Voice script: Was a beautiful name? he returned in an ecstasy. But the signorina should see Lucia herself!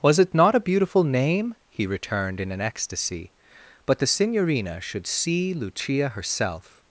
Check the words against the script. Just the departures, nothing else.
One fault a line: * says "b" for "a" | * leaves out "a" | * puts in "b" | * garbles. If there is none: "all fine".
* puts in "it not"